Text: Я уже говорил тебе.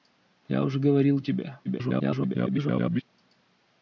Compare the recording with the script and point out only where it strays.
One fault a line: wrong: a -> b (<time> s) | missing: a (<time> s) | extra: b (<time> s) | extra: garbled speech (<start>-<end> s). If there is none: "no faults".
extra: garbled speech (1.6-3.0 s)